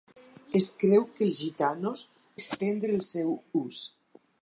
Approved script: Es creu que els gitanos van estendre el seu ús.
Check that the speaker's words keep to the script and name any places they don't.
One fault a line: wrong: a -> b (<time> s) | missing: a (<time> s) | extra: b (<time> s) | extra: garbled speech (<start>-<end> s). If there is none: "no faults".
missing: van (2.0 s)